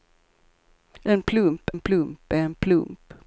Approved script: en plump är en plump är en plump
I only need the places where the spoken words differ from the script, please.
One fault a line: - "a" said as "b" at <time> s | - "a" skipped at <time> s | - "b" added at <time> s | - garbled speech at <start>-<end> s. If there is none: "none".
- "är" skipped at 1.7 s